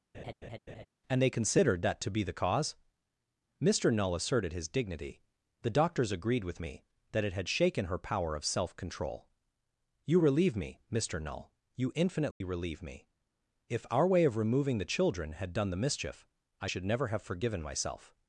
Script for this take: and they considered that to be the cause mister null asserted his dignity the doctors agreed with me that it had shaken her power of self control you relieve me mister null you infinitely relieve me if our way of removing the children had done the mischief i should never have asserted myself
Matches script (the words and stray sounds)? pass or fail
fail